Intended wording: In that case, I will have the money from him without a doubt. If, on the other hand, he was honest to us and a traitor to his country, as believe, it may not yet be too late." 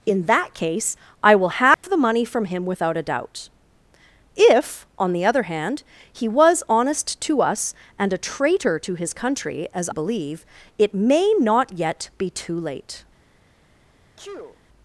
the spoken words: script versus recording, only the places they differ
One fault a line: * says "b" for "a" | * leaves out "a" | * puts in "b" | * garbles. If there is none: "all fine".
all fine